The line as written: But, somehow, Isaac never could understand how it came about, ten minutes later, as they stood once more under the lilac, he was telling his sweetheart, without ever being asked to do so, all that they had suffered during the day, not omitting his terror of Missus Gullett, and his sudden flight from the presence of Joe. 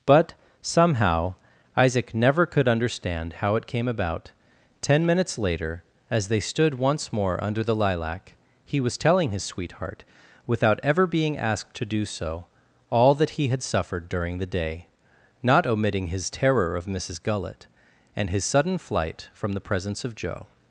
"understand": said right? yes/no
yes